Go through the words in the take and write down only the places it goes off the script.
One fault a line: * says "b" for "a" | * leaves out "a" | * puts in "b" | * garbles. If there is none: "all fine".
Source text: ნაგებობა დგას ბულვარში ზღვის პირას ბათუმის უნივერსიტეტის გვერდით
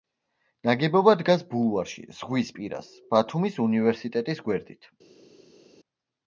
all fine